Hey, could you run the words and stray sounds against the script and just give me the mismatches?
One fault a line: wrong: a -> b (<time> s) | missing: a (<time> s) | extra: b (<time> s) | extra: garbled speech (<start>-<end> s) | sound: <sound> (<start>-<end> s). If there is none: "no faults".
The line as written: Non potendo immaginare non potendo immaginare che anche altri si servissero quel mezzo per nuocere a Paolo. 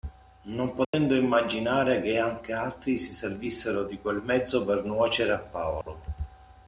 sound: dropout (0.8-0.9 s)
missing: non potendo immaginare (2.0 s)
extra: di (3.8 s)
sound: dropout (5.8-5.9 s)